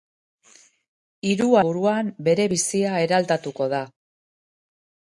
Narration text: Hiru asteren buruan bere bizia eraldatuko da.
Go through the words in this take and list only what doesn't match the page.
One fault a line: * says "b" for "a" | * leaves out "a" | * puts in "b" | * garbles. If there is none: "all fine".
* leaves out "asteren"